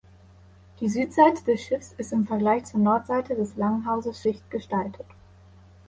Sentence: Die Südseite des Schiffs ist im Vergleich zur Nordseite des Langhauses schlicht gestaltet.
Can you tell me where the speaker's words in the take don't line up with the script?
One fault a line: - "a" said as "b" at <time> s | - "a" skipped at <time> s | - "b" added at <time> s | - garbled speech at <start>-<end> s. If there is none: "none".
none